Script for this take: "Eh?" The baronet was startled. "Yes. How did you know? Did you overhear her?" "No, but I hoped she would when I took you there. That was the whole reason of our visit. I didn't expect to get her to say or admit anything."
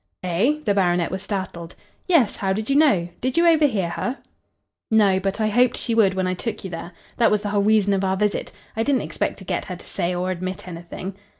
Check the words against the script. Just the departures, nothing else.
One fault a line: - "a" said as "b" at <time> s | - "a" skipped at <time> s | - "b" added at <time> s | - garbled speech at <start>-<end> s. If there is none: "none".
none